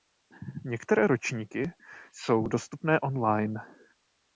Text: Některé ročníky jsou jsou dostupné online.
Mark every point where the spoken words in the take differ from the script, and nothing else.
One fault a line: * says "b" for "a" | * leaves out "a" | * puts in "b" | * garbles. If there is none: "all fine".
* leaves out "jsou"